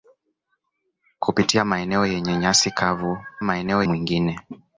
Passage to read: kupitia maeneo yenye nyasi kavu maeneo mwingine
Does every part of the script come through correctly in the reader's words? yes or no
yes